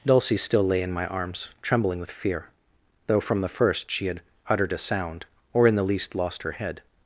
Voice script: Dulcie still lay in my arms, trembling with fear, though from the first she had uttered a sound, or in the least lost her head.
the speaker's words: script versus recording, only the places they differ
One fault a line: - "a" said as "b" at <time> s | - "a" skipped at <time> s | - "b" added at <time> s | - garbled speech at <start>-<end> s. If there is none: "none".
none